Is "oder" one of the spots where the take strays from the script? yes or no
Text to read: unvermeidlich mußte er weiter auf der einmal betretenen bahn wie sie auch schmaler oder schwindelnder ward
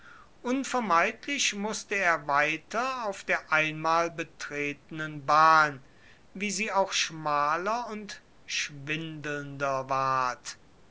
yes